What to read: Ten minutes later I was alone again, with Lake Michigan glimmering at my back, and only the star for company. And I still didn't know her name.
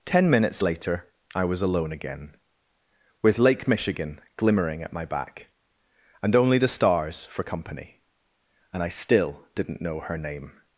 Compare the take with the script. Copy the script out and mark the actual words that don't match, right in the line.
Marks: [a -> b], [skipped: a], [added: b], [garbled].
Ten minutes later I was alone again, with Lake Michigan glimmering at my back, and only the [star -> stars] for company. And I still didn't know her name.